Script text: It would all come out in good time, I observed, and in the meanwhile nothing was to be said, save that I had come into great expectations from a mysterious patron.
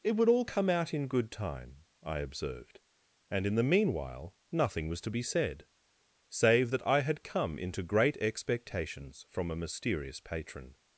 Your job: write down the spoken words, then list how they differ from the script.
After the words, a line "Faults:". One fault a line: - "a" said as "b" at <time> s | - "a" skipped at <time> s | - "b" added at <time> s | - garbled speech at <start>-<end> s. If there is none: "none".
It would all come out in good time, I observed, and in the meanwhile nothing was to be said, save that I had come into great expectations from a mysterious patron.
Faults:
none